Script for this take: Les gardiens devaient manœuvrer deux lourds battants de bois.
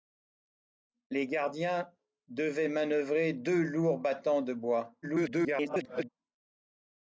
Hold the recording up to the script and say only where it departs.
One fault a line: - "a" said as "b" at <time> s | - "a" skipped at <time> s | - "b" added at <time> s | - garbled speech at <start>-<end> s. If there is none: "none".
- garbled speech at 5.0-6.1 s